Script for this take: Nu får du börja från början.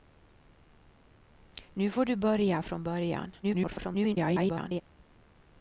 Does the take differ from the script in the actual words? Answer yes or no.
yes